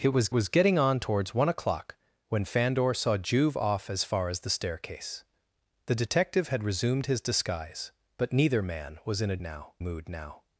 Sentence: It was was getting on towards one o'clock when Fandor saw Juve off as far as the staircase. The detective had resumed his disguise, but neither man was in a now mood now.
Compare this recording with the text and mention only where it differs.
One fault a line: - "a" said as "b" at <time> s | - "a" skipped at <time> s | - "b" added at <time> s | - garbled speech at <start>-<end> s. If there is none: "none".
none